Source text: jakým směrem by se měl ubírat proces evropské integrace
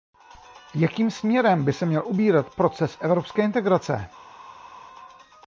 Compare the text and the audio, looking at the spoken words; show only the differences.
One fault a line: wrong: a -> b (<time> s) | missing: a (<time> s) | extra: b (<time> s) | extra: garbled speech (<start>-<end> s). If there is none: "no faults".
no faults